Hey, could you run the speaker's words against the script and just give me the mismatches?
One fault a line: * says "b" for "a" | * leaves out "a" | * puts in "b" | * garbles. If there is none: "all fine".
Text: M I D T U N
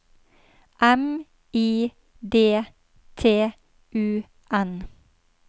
all fine